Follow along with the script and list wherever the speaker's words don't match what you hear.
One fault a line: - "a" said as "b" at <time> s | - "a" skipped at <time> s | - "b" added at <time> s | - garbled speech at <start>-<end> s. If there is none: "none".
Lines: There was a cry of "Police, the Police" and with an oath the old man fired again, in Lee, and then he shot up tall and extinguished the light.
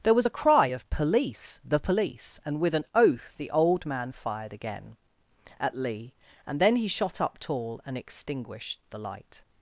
- "in" said as "at" at 5.6 s